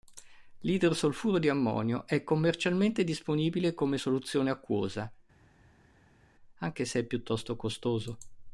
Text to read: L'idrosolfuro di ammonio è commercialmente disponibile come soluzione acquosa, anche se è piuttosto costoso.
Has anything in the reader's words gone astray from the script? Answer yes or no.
no